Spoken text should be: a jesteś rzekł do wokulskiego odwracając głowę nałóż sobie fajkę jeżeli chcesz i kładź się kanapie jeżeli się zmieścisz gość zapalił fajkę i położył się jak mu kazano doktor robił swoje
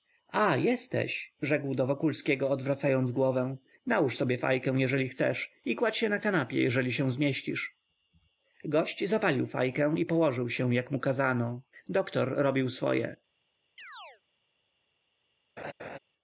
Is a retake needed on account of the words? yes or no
yes